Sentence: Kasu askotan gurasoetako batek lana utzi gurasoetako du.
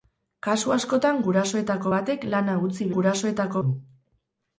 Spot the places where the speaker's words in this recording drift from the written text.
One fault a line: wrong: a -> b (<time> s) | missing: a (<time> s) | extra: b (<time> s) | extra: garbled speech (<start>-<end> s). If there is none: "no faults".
no faults